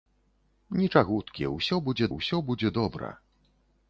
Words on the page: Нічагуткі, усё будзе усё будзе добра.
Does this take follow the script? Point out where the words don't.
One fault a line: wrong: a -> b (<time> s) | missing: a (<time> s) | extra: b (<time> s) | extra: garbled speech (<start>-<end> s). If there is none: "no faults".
no faults